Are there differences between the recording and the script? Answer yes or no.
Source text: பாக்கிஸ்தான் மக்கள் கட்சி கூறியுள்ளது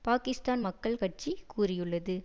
no